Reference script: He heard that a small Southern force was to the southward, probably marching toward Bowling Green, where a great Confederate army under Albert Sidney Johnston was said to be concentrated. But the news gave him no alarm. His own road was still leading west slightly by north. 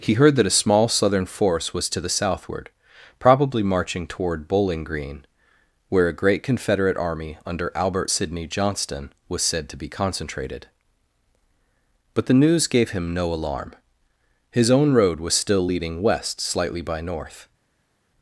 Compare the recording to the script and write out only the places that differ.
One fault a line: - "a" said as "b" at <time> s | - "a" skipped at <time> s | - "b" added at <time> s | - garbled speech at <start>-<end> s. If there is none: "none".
none